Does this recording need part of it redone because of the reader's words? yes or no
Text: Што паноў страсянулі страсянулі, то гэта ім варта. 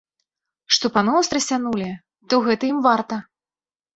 yes